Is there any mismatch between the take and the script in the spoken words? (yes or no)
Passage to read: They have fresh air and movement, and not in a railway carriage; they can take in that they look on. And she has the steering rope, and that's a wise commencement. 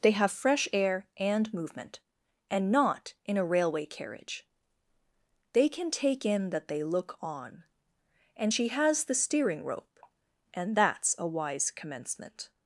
no